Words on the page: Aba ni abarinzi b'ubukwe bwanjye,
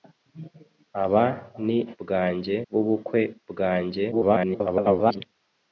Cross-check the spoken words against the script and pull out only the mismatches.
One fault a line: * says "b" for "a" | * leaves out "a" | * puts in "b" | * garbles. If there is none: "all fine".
* says "bwanjye" for "abarinzi"
* garbles